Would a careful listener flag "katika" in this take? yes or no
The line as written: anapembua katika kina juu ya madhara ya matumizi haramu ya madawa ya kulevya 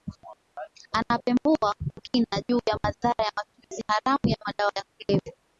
yes